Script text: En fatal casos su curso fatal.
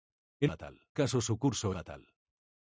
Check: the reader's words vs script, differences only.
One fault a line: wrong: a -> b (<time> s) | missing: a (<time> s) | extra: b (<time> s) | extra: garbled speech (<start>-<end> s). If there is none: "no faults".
no faults